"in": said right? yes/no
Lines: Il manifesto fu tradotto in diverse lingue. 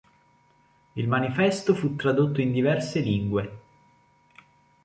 yes